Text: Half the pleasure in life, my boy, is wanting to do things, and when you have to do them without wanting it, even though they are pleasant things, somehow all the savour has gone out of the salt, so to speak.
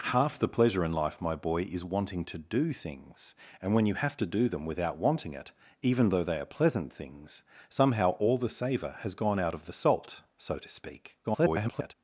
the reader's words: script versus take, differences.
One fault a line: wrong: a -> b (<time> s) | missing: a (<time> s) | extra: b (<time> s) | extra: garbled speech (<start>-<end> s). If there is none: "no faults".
extra: garbled speech (11.2-11.9 s)